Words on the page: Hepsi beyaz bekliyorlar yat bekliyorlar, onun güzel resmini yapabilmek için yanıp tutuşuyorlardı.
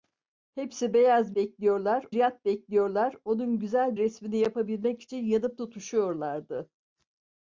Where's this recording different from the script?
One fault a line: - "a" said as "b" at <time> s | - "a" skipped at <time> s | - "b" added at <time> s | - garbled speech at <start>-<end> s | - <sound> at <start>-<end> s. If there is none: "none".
none